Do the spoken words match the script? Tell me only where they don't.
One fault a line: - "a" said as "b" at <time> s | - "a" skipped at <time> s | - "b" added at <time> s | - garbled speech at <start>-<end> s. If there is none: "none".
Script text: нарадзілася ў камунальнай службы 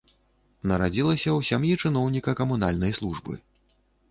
- "сям'і чыноўніка" added at 1.5 s